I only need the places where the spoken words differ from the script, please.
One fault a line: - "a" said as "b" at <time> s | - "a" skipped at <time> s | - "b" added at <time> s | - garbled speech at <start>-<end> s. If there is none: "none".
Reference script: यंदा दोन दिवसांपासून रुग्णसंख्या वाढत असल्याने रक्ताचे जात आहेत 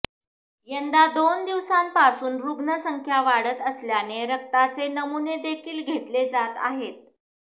- "नमुनेदेखील घेतले" added at 4.9 s